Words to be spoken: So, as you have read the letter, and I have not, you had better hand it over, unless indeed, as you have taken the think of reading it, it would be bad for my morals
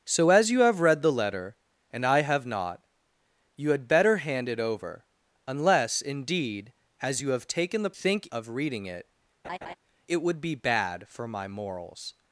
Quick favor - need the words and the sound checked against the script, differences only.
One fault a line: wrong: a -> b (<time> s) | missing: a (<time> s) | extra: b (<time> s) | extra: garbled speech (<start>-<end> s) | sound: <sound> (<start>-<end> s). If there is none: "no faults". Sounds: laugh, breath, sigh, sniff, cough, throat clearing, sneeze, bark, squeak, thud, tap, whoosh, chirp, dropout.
sound: laugh (9.4-9.8 s)